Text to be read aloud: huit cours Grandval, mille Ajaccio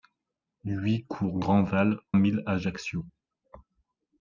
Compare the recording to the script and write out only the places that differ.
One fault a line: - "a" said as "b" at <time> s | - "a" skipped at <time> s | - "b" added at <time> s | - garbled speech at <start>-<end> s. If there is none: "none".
none